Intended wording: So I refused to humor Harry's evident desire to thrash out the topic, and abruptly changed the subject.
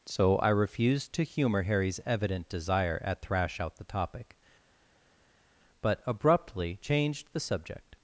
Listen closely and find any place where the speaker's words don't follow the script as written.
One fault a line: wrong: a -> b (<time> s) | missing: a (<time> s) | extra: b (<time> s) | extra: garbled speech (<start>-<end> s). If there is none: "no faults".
wrong: to -> at (3.0 s)
wrong: and -> but (5.8 s)